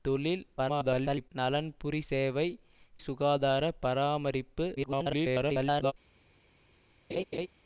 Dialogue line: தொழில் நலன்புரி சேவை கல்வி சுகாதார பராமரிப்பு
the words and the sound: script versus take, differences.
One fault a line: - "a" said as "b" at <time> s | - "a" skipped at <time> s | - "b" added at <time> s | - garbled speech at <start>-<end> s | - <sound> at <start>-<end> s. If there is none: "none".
- garbled speech at 0.6-1.3 s
- "கல்வி" skipped at 2.5 s
- garbled speech at 4.8-5.9 s
- laugh at 7.1-7.5 s